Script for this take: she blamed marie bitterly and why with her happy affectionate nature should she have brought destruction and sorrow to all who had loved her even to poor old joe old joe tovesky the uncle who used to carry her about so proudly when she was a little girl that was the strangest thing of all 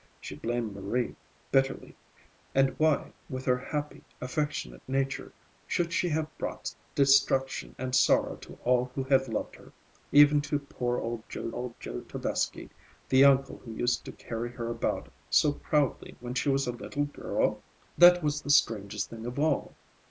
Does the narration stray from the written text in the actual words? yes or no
no